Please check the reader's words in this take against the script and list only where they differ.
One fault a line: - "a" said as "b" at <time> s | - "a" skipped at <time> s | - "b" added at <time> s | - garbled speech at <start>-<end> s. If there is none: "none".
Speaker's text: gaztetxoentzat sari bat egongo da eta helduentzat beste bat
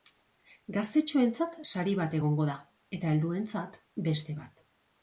none